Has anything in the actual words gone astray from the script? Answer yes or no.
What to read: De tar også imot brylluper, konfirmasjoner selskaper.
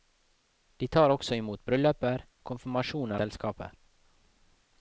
no